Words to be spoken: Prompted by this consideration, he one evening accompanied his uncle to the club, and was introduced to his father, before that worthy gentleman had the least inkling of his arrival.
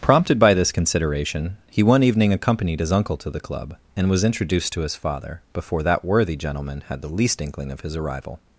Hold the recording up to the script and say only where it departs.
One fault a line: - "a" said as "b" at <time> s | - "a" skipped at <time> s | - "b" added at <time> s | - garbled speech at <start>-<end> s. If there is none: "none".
none